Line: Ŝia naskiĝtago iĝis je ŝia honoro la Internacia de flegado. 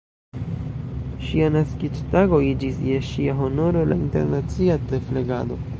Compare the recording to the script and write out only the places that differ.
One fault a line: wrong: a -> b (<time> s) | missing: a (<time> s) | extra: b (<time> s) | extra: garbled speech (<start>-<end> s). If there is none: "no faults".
no faults